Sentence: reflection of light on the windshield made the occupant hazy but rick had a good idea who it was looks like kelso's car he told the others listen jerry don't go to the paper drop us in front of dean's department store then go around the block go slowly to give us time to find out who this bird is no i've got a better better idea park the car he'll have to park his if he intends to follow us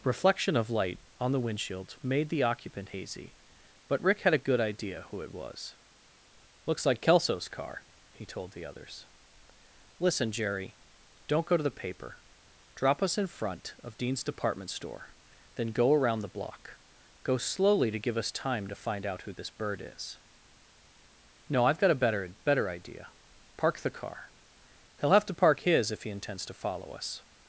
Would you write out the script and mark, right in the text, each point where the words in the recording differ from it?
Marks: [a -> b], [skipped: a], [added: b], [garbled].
reflection of light on the windshield made the occupant hazy but rick had a good idea who it was looks like kelso's car he told the others listen jerry don't go to the paper drop us in front of dean's department store then go around the block go slowly to give us time to find out who this bird is no i've got a better better idea park the car he'll have to park his if he intends to follow us